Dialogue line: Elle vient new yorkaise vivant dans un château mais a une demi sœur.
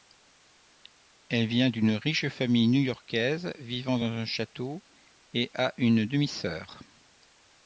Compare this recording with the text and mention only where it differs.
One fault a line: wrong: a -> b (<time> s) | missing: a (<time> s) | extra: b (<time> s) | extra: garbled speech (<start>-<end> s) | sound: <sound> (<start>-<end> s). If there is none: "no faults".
extra: d'une riche famille (1.7 s)
wrong: mais -> et (5.3 s)